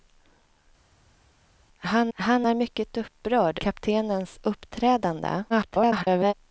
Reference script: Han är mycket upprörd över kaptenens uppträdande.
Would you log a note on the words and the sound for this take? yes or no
yes